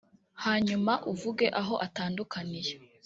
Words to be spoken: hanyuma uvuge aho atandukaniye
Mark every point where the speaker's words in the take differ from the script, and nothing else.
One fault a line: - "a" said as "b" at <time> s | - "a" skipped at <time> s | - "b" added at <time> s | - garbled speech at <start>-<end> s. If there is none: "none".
none